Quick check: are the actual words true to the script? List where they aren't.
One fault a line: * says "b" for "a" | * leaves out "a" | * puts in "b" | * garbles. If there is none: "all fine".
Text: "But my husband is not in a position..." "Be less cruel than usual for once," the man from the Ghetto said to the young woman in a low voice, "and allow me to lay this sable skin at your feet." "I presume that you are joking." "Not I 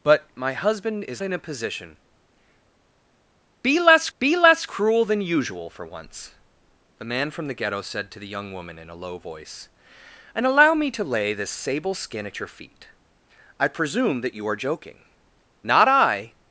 * leaves out "not"
* puts in "be less"